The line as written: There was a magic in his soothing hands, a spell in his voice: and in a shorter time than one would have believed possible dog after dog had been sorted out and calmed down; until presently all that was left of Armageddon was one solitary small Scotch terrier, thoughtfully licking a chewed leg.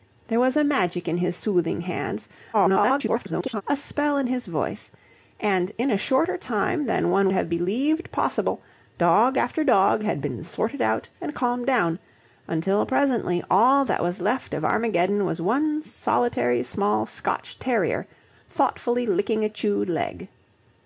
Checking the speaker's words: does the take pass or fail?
fail